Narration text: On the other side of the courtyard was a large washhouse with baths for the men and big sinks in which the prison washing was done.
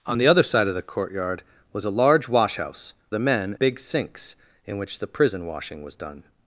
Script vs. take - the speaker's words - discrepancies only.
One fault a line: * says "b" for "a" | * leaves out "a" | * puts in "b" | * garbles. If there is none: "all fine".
* leaves out "with baths for"
* leaves out "and"